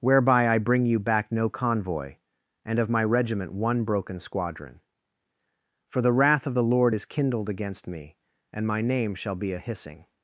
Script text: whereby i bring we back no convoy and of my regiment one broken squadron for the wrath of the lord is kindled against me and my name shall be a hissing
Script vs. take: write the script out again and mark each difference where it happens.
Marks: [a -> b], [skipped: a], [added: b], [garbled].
whereby i bring [we -> you] back no convoy and of my regiment one broken squadron for the wrath of the lord is kindled against me and my name shall be a hissing